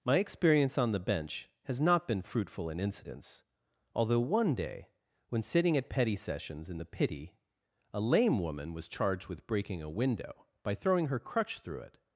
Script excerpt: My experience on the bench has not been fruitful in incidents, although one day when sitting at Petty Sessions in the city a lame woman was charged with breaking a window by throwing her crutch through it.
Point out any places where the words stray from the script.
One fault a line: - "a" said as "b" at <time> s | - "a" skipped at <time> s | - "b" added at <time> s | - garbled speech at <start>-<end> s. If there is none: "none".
- "city" said as "pity" at 6.8 s